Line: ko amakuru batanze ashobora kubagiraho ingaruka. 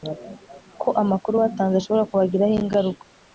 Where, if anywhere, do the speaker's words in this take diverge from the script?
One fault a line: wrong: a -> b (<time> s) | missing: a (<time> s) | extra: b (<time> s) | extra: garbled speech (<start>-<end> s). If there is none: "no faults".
no faults